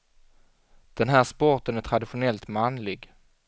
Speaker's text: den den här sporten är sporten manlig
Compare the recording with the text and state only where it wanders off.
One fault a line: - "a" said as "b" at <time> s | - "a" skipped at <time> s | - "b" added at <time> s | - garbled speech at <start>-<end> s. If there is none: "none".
- "den" skipped at 1.1 s
- "sporten" said as "traditionellt" at 1.8 s